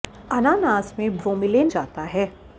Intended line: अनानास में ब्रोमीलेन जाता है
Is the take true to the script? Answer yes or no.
yes